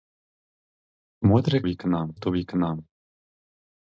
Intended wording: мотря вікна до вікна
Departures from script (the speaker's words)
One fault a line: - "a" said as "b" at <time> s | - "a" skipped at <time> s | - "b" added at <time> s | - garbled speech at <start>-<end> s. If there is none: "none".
none